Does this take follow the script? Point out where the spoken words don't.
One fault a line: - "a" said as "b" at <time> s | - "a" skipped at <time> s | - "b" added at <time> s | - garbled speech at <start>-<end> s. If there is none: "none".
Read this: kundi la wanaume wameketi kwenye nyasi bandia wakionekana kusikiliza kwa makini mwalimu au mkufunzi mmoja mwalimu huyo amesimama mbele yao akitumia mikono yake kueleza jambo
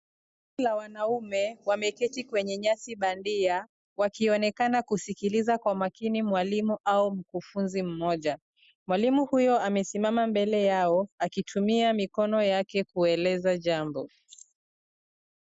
none